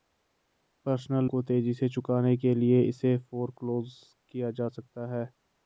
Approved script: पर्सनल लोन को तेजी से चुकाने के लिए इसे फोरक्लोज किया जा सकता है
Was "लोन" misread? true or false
true